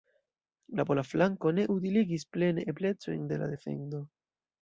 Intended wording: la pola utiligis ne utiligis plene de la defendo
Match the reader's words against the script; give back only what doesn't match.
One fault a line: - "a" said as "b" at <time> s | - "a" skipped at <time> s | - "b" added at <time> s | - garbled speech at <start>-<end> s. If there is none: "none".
- "utiligis" said as "flanko" at 1.1 s
- "eblecojn" added at 2.7 s